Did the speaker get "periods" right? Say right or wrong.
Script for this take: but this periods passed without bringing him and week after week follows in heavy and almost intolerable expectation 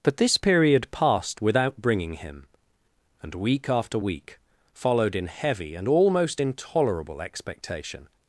wrong